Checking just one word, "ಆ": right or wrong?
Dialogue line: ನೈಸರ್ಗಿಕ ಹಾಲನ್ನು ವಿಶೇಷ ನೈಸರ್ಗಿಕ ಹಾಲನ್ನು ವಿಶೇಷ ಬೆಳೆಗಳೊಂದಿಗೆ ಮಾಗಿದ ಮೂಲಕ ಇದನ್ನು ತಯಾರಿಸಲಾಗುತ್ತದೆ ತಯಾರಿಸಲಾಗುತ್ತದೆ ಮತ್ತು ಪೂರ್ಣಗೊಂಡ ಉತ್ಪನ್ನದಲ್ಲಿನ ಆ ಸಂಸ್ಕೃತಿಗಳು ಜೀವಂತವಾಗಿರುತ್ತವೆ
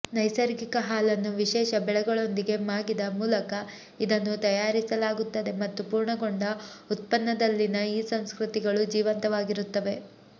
wrong